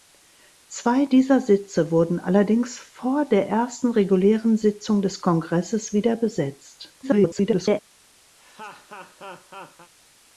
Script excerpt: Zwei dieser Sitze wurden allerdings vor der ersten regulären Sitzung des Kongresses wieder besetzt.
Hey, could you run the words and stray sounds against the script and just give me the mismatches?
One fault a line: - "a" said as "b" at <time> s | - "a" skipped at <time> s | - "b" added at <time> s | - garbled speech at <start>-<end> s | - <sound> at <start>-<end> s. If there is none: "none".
- garbled speech at 7.0-7.8 s
- laugh at 8.4-9.9 s